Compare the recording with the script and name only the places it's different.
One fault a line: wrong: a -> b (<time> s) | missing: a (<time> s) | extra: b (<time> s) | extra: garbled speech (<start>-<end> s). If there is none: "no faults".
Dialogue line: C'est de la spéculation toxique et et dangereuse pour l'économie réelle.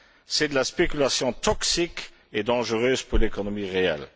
missing: et (2.4 s)